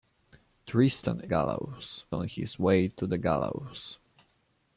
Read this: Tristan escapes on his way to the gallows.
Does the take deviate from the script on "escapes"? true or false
true